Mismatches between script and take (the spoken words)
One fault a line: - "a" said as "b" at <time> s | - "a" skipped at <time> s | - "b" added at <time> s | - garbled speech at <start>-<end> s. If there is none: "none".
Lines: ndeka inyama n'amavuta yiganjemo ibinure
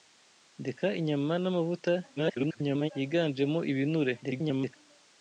- garbled speech at 2.2-2.9 s
- garbled speech at 4.2-4.8 s